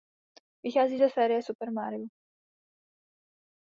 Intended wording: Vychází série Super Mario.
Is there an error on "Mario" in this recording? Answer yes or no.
no